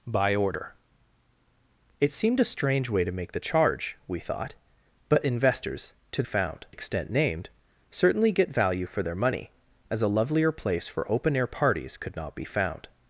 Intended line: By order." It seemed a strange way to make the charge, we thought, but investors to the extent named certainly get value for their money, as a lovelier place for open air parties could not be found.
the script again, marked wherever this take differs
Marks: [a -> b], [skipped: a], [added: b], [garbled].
By order." It seemed a strange way to make the charge, we thought, but investors to [the -> found] extent named certainly get value for their money, as a lovelier place for open air parties could not be found.